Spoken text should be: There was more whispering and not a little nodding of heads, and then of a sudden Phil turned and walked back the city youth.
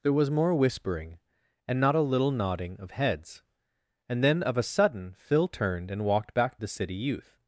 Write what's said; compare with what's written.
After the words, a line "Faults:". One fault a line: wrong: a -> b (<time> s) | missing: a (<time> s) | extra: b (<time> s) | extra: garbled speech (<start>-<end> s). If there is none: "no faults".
There was more whispering and not a little nodding of heads, and then of a sudden Phil turned and walked back the city youth.
Faults:
no faults